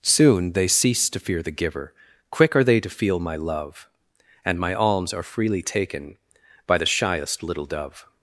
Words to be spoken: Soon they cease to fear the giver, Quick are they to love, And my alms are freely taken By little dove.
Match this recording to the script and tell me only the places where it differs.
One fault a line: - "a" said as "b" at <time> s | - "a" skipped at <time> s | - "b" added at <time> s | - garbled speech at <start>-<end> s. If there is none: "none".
- "feel my" added at 2.9 s
- "the shyest" added at 6.7 s